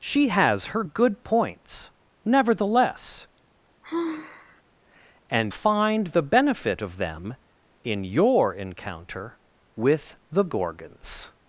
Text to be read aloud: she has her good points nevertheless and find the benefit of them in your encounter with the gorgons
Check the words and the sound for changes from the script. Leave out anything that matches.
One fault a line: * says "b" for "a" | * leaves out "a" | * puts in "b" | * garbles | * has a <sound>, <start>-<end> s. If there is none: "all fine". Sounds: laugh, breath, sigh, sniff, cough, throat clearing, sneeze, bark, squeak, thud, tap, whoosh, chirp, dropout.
* has a sigh, 3.8-4.6 s